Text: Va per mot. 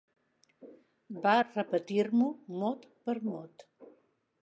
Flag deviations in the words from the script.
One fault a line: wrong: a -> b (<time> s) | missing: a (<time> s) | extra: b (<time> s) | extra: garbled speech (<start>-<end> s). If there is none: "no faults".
extra: repetir m'ho mot (1.4 s)